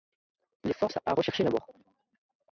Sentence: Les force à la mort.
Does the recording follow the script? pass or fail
fail